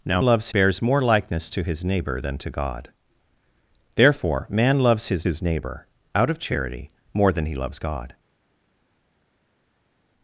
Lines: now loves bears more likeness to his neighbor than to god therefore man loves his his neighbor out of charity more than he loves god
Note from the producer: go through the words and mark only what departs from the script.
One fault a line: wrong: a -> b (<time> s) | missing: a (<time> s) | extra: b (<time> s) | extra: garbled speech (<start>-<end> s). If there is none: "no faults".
no faults